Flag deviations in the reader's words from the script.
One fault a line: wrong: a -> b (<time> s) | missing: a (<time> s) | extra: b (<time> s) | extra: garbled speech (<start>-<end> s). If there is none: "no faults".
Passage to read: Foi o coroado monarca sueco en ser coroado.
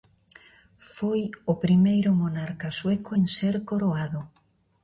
wrong: coroado -> primeiro (1.6 s)